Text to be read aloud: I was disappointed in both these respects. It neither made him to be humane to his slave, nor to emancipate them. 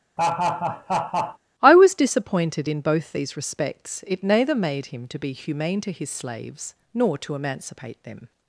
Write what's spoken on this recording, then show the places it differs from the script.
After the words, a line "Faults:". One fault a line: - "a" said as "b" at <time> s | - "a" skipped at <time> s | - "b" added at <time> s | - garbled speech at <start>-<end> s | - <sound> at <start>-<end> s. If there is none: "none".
I was disappointed in both these respects. It neither made him to be humane to his slaves, nor to emancipate them.
Faults:
- laugh at 0.2-1.4 s
- "slave" said as "slaves" at 6.1 s